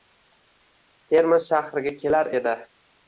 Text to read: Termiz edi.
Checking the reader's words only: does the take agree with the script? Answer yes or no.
no